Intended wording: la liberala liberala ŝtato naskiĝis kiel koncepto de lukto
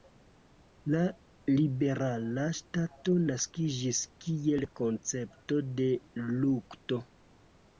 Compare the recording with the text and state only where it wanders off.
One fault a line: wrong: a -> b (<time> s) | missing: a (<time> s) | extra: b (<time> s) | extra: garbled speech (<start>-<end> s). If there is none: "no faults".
missing: liberala (2.4 s)